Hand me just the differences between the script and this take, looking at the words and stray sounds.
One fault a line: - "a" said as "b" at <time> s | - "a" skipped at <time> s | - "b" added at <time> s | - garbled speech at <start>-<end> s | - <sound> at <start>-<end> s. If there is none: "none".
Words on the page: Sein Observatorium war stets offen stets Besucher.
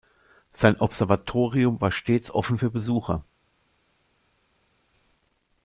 - "stets" said as "für" at 2.6 s